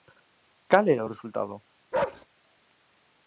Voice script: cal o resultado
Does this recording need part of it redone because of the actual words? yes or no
yes